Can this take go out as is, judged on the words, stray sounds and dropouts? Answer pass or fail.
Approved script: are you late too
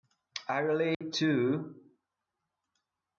fail